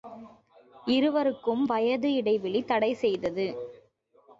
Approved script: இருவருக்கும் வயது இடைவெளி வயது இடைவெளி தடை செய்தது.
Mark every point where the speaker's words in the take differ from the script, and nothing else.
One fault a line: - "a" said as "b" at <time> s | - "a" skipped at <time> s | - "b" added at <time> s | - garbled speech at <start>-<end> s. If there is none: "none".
- "வயது இடைவெளி" skipped at 2.6 s